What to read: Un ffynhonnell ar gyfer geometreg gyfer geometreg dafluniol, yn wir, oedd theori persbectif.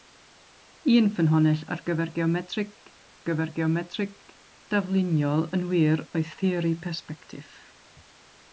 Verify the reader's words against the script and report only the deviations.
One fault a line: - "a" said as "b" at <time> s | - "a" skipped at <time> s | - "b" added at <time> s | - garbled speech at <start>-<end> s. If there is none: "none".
none